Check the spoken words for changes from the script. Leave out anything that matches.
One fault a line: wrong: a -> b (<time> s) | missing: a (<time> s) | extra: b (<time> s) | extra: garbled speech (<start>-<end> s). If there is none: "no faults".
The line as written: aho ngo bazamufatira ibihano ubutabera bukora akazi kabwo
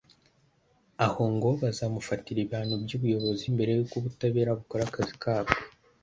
extra: by'ubuyobozi mbere y'uko (2.8 s)